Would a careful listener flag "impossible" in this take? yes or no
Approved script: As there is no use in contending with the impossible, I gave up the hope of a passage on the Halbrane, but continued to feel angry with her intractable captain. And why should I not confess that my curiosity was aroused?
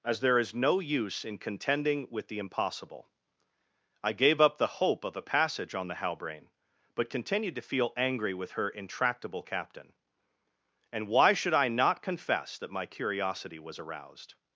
no